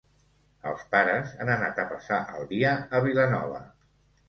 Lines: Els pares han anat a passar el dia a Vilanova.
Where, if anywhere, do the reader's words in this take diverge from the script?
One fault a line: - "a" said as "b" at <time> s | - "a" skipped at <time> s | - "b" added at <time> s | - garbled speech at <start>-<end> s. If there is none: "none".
none